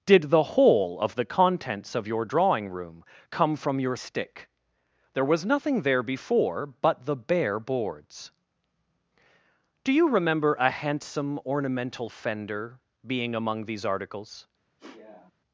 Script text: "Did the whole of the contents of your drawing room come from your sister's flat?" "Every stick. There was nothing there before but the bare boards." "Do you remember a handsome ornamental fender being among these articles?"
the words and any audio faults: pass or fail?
fail